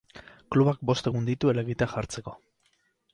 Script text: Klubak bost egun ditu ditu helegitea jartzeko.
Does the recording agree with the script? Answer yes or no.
no